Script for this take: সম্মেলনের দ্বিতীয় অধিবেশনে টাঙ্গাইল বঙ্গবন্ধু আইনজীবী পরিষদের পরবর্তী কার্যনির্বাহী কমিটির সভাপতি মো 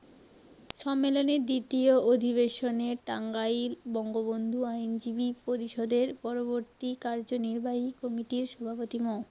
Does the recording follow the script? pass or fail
pass